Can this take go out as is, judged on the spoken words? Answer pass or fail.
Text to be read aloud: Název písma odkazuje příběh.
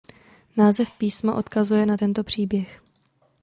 fail